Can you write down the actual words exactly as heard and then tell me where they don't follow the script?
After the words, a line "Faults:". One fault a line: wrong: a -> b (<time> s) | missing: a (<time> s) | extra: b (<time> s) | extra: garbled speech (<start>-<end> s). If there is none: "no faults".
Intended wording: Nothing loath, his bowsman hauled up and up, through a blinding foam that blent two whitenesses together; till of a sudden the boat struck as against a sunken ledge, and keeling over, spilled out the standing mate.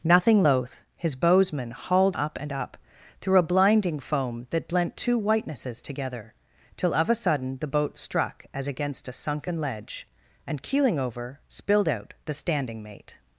Nothing loath, his bowsman hauled up and up, through a blinding foam that blent two whitenesses together; till of a sudden the boat struck as against a sunken ledge, and keeling over, spilled out the standing mate.
Faults:
no faults